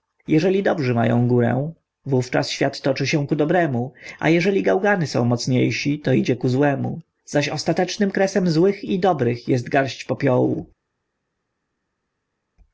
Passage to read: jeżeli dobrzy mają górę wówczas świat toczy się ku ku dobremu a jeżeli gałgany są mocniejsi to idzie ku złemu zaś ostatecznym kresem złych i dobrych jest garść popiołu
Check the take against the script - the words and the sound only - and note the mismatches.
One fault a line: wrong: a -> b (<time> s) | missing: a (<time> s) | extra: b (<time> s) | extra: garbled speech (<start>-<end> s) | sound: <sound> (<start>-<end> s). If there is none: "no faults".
missing: ku (3.3 s)